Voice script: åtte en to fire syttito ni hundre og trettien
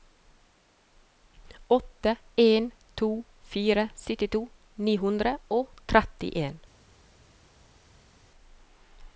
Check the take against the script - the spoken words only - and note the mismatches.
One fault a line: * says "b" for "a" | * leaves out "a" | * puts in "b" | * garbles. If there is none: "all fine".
all fine